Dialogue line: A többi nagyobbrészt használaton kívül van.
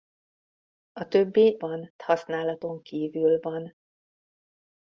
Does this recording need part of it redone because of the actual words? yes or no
yes